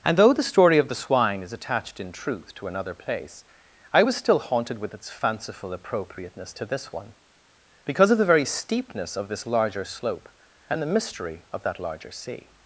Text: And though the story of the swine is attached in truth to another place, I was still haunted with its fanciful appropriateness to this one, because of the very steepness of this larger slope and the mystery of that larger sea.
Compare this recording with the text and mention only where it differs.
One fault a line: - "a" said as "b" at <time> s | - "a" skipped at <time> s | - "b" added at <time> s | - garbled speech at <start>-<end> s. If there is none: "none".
none